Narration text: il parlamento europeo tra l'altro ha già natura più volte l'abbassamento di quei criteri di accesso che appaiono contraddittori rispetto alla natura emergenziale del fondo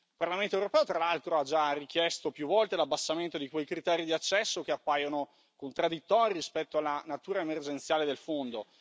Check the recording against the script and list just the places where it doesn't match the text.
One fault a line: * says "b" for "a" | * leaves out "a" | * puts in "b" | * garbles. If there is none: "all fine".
* says "richiesto" for "natura"